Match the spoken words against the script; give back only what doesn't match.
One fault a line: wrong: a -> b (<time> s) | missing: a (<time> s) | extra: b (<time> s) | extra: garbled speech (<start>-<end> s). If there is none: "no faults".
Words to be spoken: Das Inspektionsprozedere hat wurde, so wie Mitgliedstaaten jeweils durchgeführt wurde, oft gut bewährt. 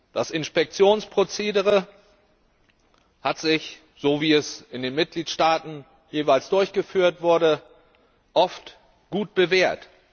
wrong: wurde -> sich (3.4 s)
extra: es in den (4.3 s)